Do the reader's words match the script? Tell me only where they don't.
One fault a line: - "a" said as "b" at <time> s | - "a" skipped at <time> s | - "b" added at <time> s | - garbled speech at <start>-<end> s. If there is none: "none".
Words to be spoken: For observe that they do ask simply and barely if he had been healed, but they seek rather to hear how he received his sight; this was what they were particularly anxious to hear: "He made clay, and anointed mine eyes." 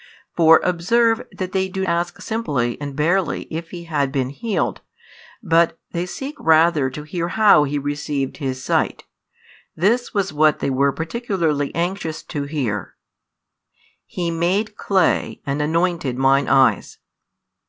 none